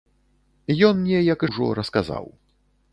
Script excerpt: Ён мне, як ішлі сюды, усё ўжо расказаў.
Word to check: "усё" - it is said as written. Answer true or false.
false